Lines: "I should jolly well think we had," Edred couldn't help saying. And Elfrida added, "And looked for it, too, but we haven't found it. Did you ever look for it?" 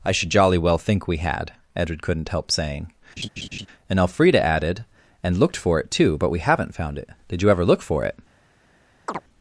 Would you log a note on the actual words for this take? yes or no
no